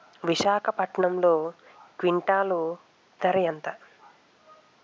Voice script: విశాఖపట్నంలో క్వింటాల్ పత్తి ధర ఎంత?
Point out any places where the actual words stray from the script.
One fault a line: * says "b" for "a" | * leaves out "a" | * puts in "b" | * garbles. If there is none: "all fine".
* leaves out "పత్తి"